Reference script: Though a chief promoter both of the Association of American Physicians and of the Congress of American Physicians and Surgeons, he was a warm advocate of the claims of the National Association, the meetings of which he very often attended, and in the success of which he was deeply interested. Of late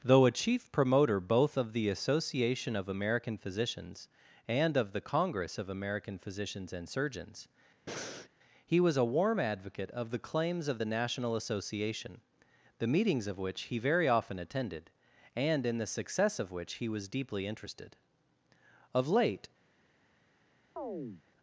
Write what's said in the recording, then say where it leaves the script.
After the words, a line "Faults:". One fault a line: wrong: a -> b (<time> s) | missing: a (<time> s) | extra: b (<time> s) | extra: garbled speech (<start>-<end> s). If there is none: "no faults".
Though a chief promoter both of the Association of American Physicians and of the Congress of American Physicians and Surgeons, he was a warm advocate of the claims of the National Association, the meetings of which he very often attended, and in the success of which he was deeply interested. Of late
Faults:
no faults